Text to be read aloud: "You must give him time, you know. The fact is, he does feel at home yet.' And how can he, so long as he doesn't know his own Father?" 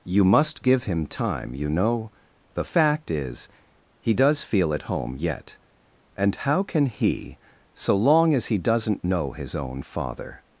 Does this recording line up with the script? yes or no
yes